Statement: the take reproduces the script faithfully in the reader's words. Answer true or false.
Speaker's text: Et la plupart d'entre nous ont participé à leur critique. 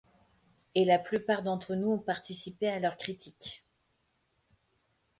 true